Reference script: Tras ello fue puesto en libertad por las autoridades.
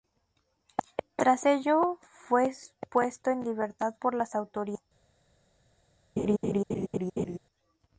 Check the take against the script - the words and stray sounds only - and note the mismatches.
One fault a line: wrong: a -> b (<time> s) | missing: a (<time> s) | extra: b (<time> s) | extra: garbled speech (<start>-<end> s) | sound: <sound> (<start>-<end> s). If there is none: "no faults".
sound: laugh (6.2-7.4 s)